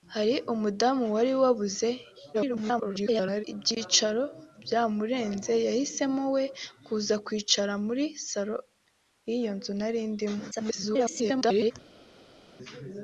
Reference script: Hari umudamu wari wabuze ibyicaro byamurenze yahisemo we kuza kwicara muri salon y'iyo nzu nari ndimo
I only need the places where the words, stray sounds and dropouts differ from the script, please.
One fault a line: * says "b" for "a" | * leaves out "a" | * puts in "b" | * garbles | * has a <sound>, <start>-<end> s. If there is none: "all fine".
* garbles
* garbles